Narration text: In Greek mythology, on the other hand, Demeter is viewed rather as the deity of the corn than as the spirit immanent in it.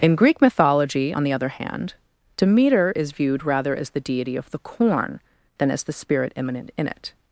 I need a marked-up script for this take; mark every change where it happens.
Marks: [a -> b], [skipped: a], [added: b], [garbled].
In Greek mythology, on the other hand, Demeter is viewed rather as the deity of the corn than as the spirit immanent in it.